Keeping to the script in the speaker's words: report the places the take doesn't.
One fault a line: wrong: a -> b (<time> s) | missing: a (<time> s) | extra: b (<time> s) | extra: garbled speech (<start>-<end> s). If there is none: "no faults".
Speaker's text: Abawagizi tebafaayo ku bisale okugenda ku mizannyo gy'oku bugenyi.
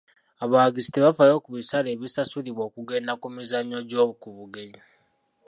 extra: ebisasulibwa (1.9 s)